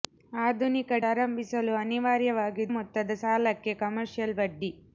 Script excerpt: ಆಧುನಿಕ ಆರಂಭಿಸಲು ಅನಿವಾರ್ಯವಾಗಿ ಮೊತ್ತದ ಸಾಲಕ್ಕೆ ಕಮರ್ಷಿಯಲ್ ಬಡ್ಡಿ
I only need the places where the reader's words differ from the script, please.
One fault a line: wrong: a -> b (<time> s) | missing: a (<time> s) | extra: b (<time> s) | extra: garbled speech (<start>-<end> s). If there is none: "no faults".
no faults